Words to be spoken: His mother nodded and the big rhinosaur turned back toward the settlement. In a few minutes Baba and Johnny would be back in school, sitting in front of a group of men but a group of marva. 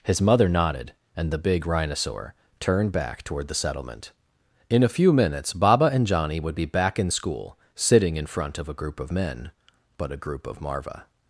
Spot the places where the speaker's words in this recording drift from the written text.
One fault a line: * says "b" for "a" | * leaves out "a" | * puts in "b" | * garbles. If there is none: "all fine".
all fine